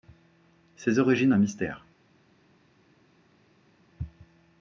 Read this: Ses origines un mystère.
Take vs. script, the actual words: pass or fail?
pass